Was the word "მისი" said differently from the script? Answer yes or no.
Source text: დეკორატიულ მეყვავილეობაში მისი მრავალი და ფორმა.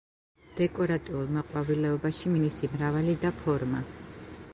no